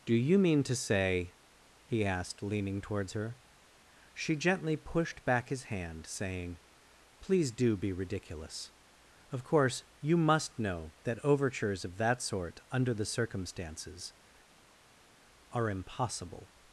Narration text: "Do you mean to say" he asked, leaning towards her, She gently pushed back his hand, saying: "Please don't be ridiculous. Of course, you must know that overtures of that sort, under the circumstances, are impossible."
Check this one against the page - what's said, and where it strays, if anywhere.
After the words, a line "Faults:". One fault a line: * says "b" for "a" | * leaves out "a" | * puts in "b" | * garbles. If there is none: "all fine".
"Do you mean to say" he asked, leaning towards her, She gently pushed back his hand, saying: "Please do be ridiculous. Of course, you must know that overtures of that sort, under the circumstances, are impossible."
Faults:
* says "do" for "don't"